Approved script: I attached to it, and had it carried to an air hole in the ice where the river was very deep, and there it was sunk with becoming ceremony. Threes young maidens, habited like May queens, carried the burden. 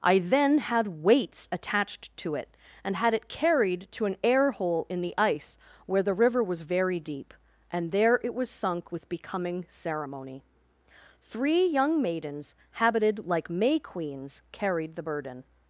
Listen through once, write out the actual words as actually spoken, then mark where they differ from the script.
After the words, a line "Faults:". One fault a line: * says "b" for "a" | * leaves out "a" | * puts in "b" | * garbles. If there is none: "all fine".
I then had weights attached to it, and had it carried to an air hole in the ice where the river was very deep, and there it was sunk with becoming ceremony. Three young maidens, habited like May queens, carried the burden.
Faults:
* puts in "then had weights"
* says "Three" for "Threes"